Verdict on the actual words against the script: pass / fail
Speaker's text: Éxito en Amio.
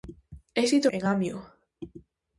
pass